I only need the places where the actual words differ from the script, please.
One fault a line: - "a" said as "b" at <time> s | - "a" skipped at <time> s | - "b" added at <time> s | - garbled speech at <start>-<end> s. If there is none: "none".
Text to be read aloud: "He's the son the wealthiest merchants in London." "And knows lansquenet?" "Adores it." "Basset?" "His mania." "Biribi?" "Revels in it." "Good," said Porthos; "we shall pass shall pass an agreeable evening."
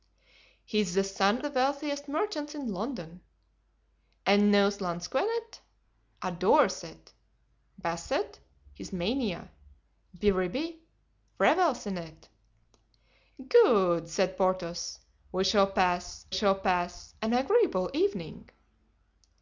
none